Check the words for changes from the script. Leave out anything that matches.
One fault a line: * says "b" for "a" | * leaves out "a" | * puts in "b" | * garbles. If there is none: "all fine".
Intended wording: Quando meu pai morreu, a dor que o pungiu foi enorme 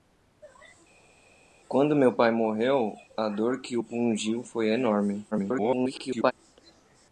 * garbles